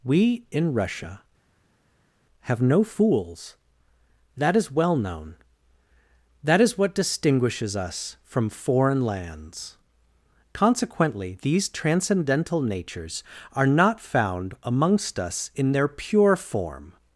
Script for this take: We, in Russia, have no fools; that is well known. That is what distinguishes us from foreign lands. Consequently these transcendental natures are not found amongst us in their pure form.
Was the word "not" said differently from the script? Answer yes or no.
no